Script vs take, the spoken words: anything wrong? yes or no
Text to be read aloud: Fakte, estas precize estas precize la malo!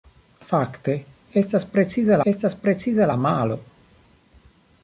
no